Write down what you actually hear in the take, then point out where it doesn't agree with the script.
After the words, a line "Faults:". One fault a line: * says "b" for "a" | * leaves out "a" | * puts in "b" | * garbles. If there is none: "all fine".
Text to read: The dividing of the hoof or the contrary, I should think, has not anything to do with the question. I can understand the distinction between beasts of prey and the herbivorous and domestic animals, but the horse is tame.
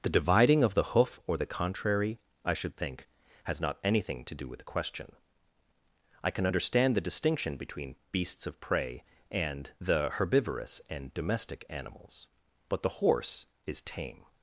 The dividing of the hoof or the contrary, I should think, has not anything to do with the question. I can understand the distinction between beasts of prey and the herbivorous and domestic animals, but the horse is tame.
Faults:
all fine